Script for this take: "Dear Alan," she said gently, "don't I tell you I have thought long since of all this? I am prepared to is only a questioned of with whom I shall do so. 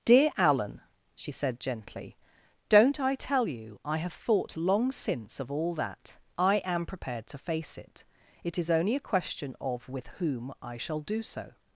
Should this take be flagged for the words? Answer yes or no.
yes